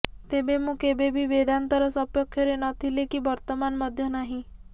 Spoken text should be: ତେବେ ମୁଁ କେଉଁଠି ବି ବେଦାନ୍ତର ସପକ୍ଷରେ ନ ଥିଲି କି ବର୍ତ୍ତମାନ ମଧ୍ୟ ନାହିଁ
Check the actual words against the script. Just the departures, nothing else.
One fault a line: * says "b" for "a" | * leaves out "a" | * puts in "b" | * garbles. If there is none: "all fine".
* says "କେବେ" for "କେଉଁଠି"